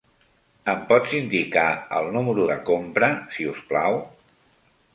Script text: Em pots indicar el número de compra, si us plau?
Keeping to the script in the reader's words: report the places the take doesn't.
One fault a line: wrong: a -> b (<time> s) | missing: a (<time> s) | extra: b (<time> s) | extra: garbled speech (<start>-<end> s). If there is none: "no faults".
no faults